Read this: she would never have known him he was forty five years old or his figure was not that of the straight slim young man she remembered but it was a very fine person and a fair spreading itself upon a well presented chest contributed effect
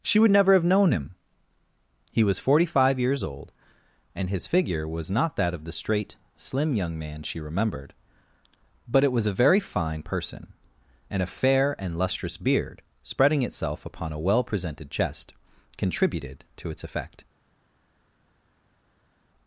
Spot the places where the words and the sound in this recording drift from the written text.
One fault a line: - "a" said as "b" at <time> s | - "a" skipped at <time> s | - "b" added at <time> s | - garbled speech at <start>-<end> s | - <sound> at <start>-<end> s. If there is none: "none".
- "or" said as "and" at 4.2 s
- "and lustrous beard" added at 11.8 s
- "to its" added at 16.6 s